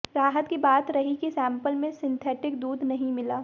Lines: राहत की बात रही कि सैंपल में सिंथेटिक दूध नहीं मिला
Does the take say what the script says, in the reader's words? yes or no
yes